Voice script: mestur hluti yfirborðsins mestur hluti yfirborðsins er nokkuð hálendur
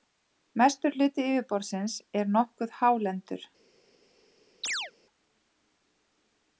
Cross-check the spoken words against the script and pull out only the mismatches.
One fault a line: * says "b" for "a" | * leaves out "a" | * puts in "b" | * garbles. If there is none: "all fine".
* leaves out "mestur hluti yfirborðsins"